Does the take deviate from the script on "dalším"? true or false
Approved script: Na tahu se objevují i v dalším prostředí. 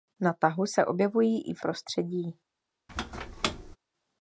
true